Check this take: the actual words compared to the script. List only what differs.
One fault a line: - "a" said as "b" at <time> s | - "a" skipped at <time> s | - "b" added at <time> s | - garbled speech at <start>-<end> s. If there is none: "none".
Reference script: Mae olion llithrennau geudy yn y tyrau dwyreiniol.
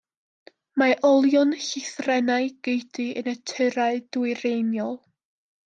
none